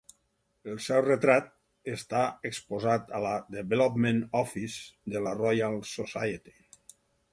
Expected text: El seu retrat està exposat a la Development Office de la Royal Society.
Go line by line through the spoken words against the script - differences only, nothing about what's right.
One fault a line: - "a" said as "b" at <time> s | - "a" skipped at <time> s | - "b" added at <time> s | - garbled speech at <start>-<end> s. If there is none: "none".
none